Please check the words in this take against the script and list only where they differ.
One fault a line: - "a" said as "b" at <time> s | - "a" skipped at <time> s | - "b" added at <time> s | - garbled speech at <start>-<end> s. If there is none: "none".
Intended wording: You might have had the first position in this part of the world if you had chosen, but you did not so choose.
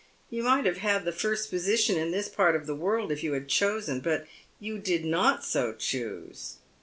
none